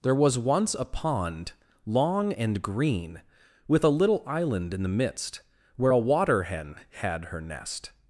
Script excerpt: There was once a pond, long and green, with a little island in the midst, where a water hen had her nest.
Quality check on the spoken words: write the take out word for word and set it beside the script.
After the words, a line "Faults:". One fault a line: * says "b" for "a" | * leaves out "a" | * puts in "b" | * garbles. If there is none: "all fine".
There was once a pond, long and green, with a little island in the midst, where a water hen had her nest.
Faults:
all fine